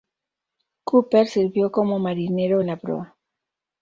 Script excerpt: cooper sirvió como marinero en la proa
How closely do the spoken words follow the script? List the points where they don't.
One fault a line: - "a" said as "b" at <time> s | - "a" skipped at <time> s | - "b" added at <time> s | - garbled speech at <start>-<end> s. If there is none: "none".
none